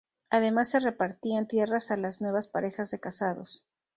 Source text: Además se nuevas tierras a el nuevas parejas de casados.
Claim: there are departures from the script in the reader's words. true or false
true